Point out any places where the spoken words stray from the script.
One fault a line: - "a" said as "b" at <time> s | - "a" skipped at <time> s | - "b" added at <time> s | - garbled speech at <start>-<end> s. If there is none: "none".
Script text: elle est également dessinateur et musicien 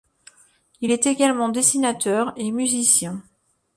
- "elle" said as "il" at 0.8 s